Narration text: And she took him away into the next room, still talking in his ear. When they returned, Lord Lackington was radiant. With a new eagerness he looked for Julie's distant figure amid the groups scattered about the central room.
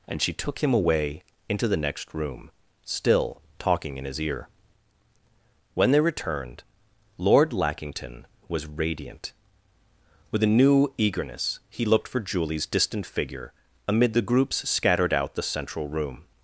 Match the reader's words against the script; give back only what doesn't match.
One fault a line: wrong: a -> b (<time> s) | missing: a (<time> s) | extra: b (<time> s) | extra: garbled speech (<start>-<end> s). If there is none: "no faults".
wrong: about -> out (15.1 s)